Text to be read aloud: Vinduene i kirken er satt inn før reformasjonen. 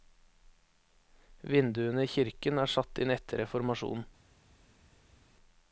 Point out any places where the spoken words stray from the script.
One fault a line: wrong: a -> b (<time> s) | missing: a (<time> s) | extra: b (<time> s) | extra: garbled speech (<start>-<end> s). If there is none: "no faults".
wrong: før -> etter (3.2 s)